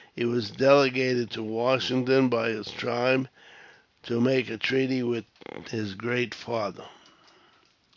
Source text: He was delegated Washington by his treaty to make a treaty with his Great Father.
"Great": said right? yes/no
yes